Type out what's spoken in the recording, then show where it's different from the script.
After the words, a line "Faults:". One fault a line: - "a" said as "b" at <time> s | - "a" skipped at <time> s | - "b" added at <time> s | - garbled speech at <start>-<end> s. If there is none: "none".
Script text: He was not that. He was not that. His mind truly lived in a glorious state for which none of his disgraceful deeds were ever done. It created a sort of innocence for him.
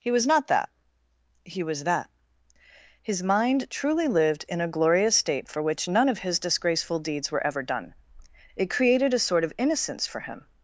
He was not that. He was that. His mind truly lived in a glorious state for which none of his disgraceful deeds were ever done. It created a sort of innocence for him.
Faults:
- "not" skipped at 1.8 s